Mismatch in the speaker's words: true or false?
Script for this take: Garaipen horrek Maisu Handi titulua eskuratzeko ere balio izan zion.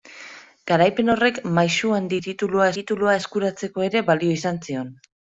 true